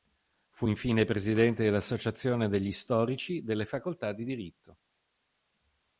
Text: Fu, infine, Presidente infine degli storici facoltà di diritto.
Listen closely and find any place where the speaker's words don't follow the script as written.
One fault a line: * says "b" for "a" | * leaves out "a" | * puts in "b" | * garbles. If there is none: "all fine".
* says "dell'associazione" for "infine"
* puts in "delle"